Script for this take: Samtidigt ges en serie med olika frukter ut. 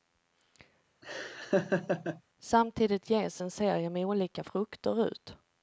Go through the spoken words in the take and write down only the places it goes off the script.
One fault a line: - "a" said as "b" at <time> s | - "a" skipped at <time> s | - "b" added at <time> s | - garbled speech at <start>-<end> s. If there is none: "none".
none